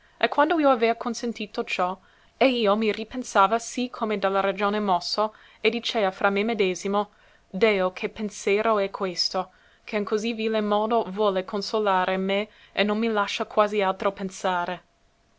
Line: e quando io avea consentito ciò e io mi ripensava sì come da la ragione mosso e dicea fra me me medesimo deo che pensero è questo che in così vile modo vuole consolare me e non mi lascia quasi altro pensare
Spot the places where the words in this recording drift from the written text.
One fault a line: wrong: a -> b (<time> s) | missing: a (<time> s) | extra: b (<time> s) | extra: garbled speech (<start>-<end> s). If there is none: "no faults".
missing: me (6.4 s)